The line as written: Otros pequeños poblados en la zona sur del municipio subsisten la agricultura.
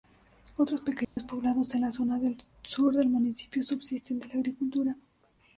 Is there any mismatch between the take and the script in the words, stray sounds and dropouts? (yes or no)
yes